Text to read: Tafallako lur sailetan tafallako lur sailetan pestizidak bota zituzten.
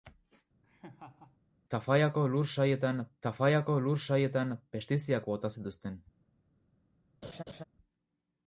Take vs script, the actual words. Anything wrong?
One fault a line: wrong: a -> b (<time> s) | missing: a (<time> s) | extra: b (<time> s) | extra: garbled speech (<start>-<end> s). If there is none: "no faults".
no faults